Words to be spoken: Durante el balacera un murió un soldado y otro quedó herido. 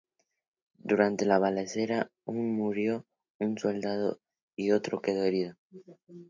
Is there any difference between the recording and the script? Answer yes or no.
yes